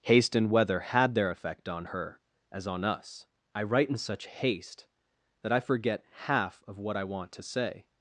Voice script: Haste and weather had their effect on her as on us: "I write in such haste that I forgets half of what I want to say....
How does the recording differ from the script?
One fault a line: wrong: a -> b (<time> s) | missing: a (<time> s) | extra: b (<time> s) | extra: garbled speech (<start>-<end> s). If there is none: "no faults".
wrong: forgets -> forget (5.6 s)